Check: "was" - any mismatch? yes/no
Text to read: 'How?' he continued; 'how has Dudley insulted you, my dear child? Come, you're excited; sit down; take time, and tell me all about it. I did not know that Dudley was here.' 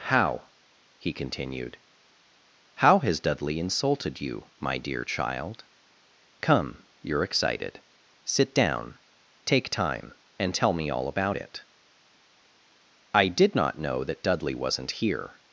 yes